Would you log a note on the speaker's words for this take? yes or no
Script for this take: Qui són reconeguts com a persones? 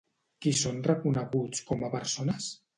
no